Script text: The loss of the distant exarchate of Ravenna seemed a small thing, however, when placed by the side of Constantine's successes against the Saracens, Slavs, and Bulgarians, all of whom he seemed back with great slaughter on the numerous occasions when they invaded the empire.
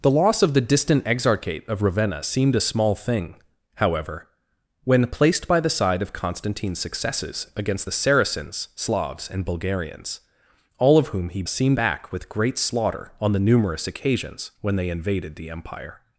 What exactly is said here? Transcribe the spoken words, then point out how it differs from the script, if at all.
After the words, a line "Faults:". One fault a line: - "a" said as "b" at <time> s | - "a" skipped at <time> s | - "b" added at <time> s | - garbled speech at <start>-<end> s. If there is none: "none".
The loss of the distant exarchate of Ravenna seemed a small thing, however, when placed by the side of Constantine's successes against the Saracens, Slavs, and Bulgarians, all of whom he seemed back with great slaughter on the numerous occasions when they invaded the empire.
Faults:
none